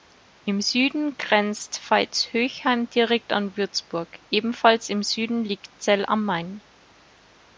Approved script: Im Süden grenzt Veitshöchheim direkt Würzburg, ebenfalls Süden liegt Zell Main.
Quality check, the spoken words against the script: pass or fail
fail